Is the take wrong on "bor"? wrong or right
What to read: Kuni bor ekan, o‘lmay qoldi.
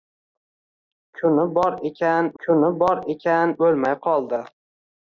right